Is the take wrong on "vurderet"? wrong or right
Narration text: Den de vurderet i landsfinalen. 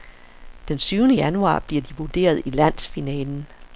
right